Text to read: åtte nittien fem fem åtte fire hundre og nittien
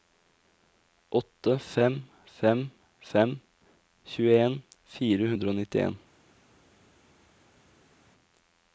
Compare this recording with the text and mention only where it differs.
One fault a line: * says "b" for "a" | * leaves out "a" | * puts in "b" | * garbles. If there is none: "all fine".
* says "fem" for "nittien"
* says "tjueen" for "åtte"